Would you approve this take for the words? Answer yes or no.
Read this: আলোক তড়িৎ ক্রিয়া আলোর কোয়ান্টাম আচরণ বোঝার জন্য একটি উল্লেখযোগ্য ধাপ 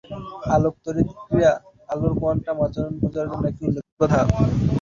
yes